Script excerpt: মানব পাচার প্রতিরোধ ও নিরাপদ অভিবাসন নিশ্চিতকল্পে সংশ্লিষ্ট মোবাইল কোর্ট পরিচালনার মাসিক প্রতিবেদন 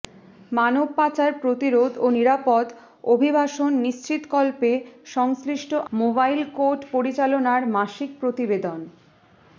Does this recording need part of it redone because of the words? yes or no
no